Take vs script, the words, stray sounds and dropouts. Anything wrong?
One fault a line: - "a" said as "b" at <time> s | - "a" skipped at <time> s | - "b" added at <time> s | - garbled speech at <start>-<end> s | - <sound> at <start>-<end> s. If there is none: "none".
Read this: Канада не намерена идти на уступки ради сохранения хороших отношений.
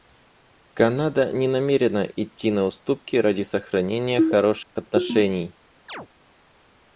- dropout at 4.6-4.8 s
- chirp at 5.9-6.1 s